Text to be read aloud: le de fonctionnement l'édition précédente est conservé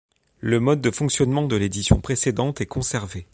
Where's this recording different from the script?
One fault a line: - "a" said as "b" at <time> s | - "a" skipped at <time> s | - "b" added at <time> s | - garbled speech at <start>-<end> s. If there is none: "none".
- "mode" added at 0.6 s
- "de" added at 1.5 s